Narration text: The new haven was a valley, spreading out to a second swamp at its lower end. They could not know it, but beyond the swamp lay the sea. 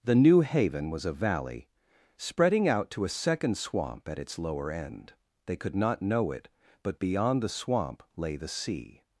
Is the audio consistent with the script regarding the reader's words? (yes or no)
yes